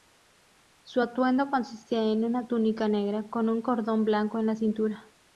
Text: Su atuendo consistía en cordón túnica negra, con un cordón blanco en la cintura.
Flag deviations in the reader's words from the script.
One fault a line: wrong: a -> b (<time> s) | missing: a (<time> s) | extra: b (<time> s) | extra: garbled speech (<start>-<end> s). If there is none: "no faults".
wrong: cordón -> una (2.2 s)